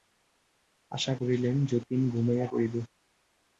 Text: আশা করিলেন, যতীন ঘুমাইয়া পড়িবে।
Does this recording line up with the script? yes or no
yes